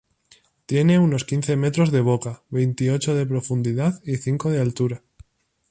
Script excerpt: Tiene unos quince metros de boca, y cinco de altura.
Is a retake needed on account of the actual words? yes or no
yes